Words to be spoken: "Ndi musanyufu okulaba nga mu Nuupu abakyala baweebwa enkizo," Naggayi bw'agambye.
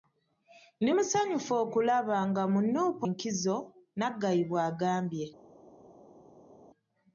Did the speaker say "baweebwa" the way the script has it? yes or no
no